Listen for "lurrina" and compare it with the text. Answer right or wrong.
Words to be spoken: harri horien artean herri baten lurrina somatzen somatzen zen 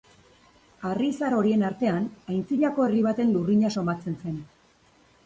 right